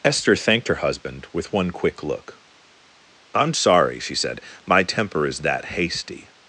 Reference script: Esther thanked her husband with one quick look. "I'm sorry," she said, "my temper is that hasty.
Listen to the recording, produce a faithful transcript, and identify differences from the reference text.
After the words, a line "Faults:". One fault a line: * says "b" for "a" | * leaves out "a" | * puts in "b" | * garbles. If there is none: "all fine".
Esther thanked her husband with one quick look. "I'm sorry," she said, "my temper is that hasty.
Faults:
all fine